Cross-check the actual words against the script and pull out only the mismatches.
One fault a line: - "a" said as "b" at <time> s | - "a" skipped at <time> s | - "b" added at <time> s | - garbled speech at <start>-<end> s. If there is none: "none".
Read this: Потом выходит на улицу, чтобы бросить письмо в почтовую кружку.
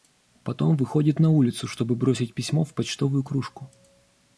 none